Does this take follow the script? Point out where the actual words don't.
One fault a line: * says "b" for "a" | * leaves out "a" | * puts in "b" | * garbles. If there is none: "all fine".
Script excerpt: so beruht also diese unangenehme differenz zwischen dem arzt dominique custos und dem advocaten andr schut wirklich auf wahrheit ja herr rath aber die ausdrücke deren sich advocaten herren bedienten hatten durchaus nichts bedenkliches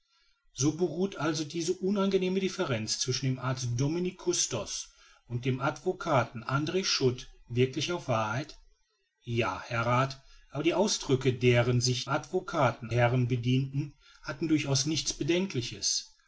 all fine